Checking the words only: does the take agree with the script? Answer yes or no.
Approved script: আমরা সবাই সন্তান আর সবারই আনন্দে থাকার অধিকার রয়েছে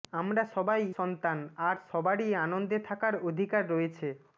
yes